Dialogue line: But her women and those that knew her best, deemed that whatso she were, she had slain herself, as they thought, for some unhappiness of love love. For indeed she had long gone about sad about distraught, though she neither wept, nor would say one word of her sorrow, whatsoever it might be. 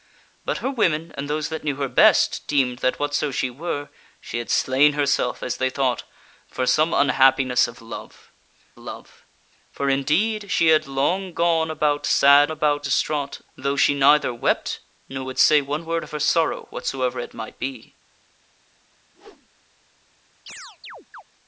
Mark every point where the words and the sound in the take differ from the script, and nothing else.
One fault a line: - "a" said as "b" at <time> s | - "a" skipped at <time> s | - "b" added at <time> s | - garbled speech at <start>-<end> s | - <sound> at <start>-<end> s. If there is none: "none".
- whoosh at 19.1-19.5 s
- chirp at 20.5-21.2 s